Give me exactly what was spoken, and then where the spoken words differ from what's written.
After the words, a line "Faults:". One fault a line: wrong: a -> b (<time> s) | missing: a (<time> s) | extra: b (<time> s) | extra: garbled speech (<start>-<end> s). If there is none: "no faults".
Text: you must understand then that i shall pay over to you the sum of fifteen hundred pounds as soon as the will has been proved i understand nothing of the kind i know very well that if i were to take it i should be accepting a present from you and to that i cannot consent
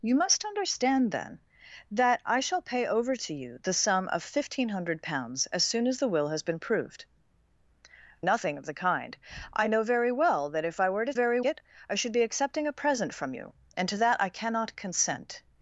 you must understand then that i shall pay over to you the sum of fifteen hundred pounds as soon as the will has been proved nothing of the kind i know very well that if i were to very it i should be accepting a present from you and to that i cannot consent
Faults:
missing: i understand (7.0 s)
wrong: take -> very (11.1 s)